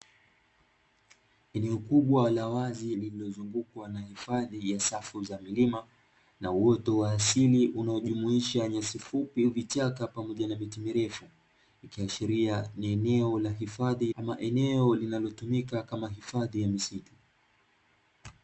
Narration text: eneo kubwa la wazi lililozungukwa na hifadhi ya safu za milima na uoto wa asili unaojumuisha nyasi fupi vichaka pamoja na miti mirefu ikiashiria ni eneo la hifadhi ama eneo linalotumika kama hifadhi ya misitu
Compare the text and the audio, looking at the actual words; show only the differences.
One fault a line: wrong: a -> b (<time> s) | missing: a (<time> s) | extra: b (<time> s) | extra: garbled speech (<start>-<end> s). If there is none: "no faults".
no faults